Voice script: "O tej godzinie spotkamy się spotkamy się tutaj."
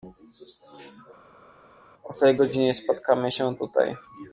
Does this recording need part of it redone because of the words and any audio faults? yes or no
yes